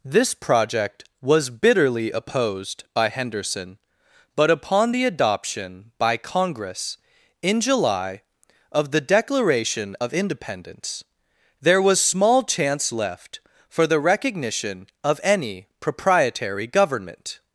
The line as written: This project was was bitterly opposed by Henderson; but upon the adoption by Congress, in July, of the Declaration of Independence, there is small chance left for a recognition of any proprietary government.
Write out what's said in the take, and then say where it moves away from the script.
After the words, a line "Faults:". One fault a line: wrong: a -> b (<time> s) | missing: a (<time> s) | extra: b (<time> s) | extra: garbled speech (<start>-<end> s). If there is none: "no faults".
This project was bitterly opposed by Henderson; but upon the adoption by Congress, in July, of the Declaration of Independence, there was small chance left for the recognition of any proprietary government.
Faults:
missing: was (1.5 s)
wrong: is -> was (11.8 s)
wrong: a -> the (13.9 s)